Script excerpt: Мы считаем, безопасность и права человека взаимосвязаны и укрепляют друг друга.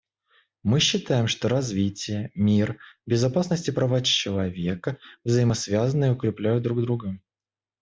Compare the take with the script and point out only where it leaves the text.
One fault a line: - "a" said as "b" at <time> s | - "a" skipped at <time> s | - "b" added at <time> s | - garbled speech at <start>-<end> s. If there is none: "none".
- "что развитие мир" added at 1.3 s